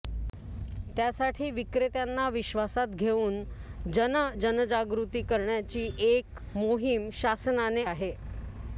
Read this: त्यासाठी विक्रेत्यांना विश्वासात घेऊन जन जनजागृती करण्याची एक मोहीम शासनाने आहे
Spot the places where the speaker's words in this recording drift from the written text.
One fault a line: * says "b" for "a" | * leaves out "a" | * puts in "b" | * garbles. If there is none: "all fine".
all fine